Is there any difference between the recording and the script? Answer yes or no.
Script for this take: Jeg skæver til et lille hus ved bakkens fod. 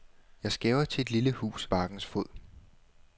yes